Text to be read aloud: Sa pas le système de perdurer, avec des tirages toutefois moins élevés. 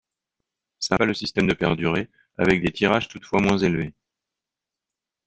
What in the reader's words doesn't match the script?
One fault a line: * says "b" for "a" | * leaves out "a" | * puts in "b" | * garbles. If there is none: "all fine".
all fine